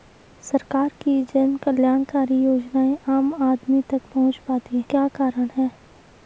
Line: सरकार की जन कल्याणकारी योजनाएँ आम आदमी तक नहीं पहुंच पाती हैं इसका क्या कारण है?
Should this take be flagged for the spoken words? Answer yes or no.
yes